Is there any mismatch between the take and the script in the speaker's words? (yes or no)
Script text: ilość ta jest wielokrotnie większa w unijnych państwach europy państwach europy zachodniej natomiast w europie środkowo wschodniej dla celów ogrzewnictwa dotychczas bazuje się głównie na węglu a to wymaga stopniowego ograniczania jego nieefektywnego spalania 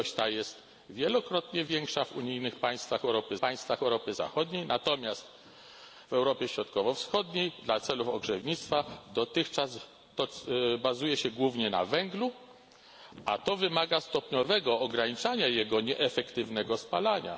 no